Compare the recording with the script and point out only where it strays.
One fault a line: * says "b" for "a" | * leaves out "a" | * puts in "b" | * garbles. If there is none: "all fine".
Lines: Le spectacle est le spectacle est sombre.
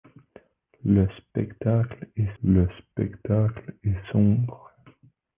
all fine